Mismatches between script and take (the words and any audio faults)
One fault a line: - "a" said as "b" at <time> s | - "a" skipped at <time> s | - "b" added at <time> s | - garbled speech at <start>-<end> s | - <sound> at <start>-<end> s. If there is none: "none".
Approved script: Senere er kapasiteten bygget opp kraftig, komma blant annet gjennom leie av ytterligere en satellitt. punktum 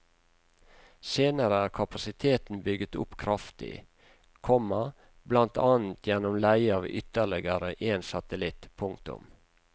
none